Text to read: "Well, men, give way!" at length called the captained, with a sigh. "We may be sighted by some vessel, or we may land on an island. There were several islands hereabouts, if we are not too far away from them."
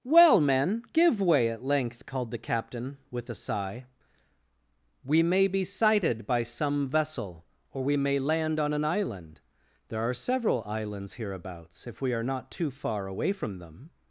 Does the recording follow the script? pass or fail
fail